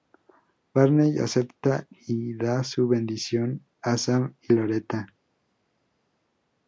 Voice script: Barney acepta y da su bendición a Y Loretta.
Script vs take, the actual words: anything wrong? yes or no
yes